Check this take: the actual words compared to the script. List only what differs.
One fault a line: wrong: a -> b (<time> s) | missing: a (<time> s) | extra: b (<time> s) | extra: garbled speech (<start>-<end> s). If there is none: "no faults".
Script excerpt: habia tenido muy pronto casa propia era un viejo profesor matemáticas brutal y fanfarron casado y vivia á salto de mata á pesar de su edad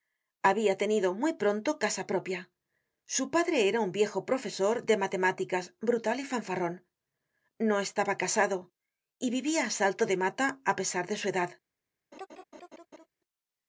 extra: su padre (3.0 s)
extra: de (4.8 s)
extra: no estaba (7.6 s)